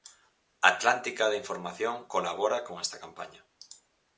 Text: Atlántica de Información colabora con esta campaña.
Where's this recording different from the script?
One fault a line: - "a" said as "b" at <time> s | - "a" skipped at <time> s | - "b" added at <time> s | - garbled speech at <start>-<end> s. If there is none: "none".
none